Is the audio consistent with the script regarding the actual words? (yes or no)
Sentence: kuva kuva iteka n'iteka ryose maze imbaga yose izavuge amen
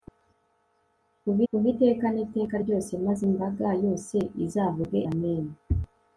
yes